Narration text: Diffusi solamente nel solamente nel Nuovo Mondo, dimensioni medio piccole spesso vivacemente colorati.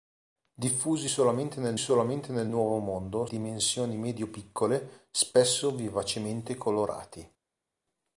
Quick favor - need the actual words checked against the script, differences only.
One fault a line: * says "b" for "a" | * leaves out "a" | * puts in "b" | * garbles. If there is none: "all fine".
all fine